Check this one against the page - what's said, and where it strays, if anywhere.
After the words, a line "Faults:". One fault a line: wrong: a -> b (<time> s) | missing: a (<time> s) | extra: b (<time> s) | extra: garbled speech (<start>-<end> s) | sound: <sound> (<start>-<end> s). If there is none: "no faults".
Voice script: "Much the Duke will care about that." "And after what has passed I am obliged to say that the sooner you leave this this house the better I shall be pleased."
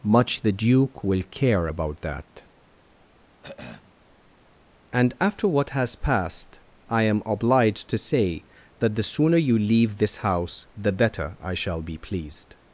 "Much the Duke will care about that." "And after what has passed I am obliged to say that the sooner you leave this house the better I shall be pleased."
Faults:
sound: throat clearing (3.4-3.9 s)
missing: this (10.2 s)